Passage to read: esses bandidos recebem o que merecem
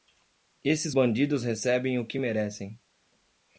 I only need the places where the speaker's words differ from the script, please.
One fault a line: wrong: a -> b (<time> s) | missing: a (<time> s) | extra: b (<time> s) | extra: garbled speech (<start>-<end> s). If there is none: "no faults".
no faults